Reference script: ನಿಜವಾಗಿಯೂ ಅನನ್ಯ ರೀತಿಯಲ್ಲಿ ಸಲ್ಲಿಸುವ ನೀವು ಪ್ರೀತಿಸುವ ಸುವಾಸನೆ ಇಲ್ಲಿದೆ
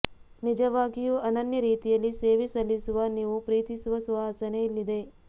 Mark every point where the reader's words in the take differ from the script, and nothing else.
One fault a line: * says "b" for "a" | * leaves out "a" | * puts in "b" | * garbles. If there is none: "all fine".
* puts in "ಸೇವೆ"